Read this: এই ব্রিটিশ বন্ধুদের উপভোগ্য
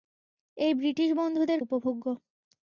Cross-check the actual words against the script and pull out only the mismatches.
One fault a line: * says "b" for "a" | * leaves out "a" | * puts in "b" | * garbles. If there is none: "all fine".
all fine